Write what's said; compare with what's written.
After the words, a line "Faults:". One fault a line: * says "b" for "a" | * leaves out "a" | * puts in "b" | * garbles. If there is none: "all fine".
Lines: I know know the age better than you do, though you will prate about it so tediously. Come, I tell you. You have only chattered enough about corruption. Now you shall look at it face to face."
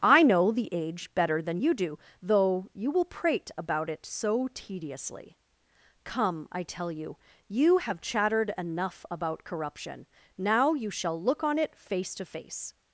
I know the age better than you do, though you will prate about it so tediously. Come, I tell you. You have chattered enough about corruption. Now you shall look on it face to face."
Faults:
* leaves out "know"
* leaves out "only"
* says "on" for "at"